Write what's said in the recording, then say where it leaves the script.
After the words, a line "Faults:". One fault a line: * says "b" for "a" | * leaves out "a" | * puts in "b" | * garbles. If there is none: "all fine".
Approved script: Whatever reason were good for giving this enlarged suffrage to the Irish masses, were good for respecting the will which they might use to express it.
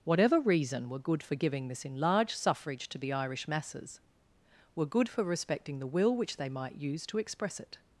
Whatever reason were good for giving this enlarged suffrage to the Irish masses, were good for respecting the will which they might use to express it.
Faults:
all fine